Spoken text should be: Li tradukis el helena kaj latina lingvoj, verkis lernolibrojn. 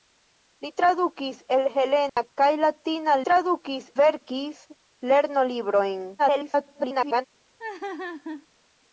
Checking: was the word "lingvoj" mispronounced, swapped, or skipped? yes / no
yes